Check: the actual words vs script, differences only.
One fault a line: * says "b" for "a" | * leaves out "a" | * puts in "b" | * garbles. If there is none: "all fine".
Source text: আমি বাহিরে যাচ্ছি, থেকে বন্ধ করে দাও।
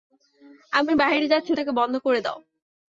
all fine